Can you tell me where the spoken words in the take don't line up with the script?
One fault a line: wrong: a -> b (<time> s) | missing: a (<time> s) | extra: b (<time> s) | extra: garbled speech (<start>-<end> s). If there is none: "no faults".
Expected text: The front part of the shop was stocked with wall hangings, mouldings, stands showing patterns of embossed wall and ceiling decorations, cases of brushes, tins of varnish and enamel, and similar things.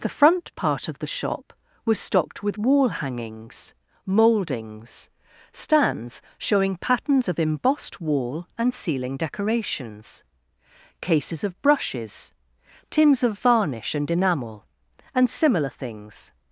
no faults